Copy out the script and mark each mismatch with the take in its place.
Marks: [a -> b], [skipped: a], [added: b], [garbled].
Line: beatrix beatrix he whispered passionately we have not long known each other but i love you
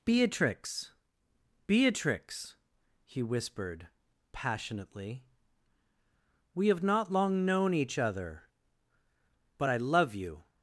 beatrix beatrix he whispered passionately we have not long known each other but i love you